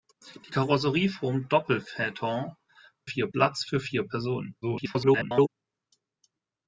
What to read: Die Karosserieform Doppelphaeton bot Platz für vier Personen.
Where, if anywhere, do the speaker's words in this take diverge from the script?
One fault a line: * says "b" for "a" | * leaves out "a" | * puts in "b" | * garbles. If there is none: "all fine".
* says "vier" for "bot"
* garbles